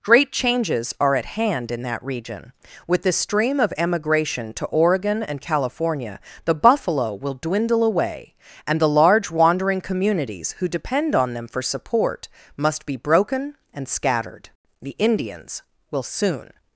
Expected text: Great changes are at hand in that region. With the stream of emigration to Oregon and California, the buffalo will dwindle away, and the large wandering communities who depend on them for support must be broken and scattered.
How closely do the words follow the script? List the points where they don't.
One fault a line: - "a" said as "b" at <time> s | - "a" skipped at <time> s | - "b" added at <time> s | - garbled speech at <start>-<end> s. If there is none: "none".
- "The Indians will soon" added at 14.8 s